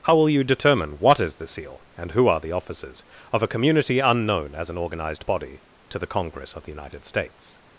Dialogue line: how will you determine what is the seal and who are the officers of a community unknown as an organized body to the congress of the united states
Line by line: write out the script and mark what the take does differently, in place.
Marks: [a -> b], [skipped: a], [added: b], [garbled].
how will you determine what is the seal and who are the officers of a community unknown as an organized body to the congress of the united states